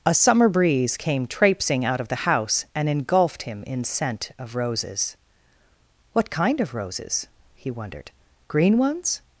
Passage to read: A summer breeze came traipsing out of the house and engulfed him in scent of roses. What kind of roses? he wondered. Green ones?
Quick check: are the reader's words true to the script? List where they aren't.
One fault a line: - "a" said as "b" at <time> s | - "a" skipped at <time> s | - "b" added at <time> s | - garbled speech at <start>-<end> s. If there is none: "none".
none